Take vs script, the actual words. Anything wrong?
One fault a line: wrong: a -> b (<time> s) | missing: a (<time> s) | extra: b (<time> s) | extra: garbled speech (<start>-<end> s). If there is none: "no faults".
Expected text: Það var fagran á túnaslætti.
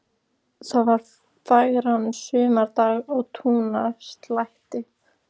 extra: sumardag (2.2 s)